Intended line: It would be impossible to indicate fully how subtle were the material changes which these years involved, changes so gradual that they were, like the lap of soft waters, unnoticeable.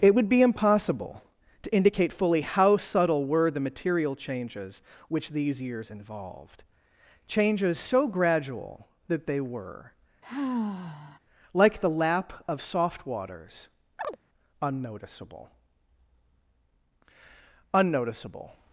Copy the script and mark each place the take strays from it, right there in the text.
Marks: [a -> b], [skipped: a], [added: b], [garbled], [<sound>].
It would be impossible to indicate fully how subtle were the material changes which these years involved, changes so gradual that they were, [sigh] like the lap of soft waters, [chirp] unnoticeable. [added: unnoticeable]